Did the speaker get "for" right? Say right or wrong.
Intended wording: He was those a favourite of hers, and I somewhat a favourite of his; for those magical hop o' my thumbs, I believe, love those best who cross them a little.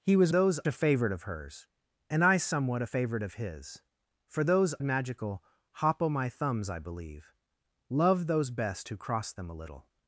right